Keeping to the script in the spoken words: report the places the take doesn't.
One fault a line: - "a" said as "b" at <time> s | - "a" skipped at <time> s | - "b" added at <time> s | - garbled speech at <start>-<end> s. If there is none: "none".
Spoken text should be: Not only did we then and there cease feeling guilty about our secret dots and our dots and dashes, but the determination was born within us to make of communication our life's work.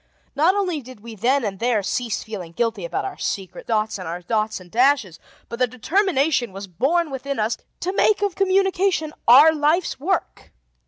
none